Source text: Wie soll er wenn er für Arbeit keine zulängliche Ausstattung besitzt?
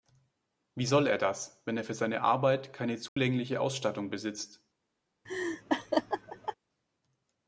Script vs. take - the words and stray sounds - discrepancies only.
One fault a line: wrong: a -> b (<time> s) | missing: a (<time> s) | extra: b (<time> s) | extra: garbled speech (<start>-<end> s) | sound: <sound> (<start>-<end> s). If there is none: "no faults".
extra: das (1.2 s)
extra: seine (1.9 s)
sound: dropout (3.1-3.2 s)
sound: laugh (5.3-6.6 s)